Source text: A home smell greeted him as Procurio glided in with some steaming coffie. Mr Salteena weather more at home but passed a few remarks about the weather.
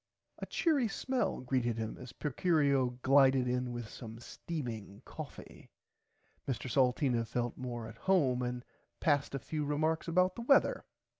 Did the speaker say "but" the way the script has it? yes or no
no